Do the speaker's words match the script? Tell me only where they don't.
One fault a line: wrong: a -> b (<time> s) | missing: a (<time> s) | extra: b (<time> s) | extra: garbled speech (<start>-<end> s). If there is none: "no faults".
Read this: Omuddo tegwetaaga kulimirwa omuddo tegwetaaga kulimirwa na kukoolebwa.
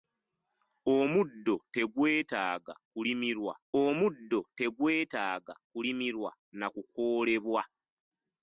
no faults